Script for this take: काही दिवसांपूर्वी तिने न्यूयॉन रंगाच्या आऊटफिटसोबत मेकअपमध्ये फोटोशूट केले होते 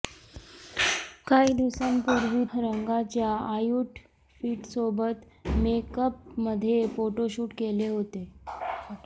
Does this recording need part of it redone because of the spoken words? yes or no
yes